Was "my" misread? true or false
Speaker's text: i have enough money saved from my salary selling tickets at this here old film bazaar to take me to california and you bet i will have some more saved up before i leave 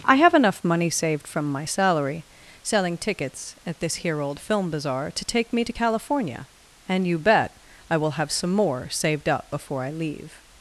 false